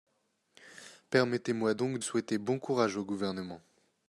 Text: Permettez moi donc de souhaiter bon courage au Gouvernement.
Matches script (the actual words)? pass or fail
fail